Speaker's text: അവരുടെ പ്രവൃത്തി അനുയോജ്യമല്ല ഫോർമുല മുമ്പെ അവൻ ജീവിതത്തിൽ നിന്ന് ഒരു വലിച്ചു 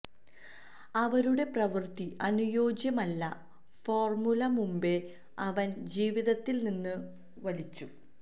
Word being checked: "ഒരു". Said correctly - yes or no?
no